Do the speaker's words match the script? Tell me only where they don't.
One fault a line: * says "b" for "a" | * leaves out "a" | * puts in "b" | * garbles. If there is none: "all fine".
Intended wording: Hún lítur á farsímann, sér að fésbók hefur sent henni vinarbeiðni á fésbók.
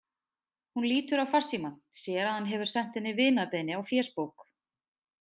* says "hann" for "fésbók"